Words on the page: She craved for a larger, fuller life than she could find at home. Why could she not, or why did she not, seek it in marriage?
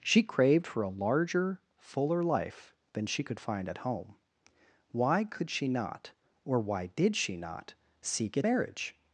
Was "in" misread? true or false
true